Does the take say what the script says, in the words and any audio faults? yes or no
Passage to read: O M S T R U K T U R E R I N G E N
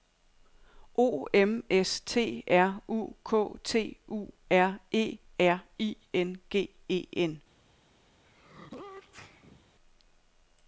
no